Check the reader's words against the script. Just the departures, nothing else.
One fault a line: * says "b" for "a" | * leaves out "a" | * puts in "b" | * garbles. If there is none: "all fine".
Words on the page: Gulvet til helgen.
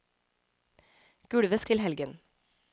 all fine